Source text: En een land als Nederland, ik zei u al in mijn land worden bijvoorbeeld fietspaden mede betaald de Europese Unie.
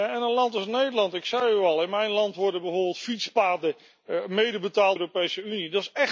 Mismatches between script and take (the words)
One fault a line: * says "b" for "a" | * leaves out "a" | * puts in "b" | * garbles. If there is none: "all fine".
all fine